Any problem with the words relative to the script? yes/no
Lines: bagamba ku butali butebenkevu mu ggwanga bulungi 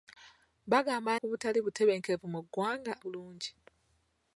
no